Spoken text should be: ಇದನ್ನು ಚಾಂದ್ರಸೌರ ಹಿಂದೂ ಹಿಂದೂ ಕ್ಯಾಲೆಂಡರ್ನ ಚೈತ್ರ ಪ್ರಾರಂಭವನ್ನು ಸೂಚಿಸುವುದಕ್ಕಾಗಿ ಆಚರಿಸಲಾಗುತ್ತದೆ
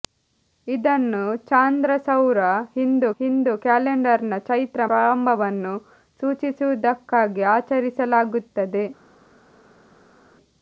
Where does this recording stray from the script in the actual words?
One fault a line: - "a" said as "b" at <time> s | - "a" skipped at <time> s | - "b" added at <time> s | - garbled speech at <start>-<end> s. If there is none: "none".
none